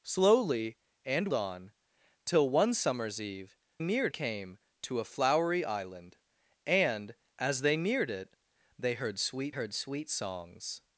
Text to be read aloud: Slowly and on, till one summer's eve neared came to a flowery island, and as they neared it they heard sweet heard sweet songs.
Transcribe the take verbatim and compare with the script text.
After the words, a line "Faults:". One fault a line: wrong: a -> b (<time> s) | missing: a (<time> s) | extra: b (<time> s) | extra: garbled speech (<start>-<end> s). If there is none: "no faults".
Slowly and on, till one summer's eve neared came to a flowery island, and as they neared it they heard sweet heard sweet songs.
Faults:
no faults